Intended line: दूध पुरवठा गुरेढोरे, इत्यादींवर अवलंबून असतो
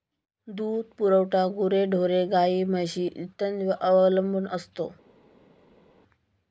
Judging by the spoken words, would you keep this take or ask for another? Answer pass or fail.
fail